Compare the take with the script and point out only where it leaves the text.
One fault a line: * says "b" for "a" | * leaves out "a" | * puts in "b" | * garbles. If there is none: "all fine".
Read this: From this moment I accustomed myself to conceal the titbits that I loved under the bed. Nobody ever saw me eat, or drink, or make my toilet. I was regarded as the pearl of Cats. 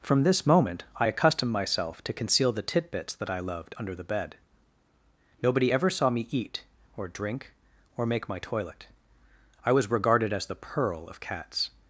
all fine